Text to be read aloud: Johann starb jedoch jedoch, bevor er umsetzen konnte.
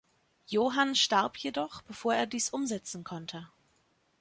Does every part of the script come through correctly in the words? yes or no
no